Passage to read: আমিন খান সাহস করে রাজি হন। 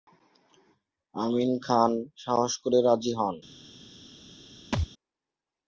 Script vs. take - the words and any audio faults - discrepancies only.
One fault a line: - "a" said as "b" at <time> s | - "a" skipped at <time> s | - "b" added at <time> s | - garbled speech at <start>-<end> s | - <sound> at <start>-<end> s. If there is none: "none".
- thud at 4.7-4.9 s